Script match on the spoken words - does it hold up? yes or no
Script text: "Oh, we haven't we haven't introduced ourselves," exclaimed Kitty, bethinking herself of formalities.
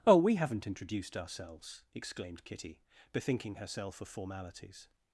no